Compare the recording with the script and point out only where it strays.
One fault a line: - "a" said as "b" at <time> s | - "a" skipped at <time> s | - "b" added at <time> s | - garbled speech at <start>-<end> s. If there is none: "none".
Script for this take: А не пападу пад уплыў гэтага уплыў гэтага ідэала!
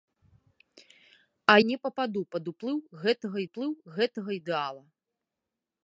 none